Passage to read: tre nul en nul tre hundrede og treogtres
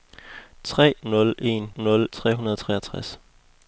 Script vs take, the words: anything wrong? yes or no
no